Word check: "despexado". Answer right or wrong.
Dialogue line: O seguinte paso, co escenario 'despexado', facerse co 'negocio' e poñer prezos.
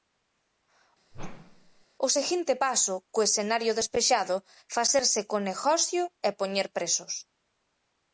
right